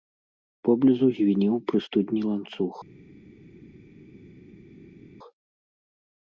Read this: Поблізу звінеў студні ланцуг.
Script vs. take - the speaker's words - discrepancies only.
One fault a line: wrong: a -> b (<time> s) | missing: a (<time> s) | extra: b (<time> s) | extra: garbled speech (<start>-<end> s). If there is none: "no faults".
extra: пры (1.7 s)